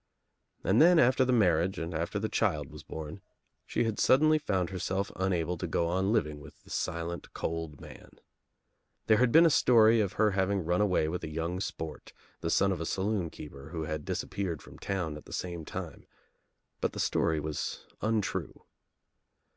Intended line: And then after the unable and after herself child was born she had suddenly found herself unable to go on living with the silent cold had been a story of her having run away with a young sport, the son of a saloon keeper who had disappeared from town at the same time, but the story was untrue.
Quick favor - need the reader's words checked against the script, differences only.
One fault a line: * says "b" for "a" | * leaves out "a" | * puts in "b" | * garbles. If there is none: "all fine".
* says "marriage" for "unable"
* says "the" for "herself"
* puts in "man There"